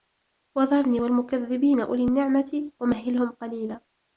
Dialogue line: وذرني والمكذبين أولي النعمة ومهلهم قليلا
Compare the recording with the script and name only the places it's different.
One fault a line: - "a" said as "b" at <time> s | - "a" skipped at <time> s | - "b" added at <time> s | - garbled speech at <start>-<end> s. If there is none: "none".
none